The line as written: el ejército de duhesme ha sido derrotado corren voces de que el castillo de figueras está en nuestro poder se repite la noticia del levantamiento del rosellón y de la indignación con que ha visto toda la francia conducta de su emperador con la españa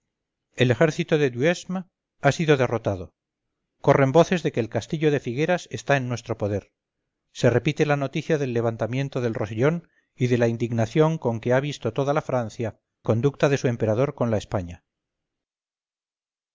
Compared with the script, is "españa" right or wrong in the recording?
right